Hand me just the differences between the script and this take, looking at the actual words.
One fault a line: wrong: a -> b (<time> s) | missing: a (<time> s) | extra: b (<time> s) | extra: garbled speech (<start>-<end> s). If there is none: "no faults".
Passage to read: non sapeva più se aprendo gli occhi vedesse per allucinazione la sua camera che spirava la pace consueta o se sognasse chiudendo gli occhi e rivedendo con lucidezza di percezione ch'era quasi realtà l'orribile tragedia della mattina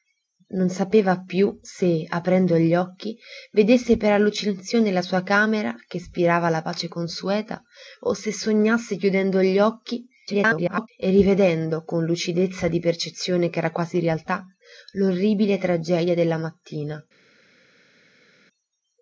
extra: garbled speech (10.3-10.9 s)